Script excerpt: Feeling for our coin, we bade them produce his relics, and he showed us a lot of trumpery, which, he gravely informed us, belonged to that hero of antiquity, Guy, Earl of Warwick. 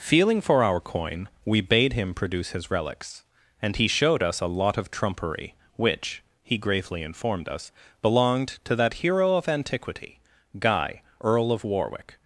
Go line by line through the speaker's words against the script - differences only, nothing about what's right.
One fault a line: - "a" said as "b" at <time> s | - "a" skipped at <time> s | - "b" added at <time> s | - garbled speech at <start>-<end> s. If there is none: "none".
- "them" said as "him" at 1.9 s